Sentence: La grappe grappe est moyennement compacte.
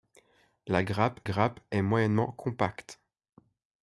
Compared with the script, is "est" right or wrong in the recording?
right